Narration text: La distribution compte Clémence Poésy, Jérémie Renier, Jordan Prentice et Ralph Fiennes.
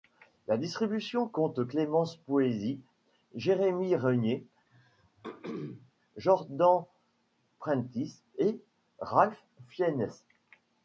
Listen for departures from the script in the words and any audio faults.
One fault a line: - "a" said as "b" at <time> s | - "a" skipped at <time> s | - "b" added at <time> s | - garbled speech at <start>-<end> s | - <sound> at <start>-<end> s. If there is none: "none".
- throat clearing at 4.7-5.9 s